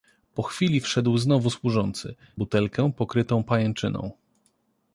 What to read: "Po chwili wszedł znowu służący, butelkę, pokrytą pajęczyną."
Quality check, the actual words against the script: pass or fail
pass